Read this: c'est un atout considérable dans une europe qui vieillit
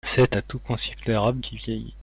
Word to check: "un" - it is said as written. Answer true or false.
false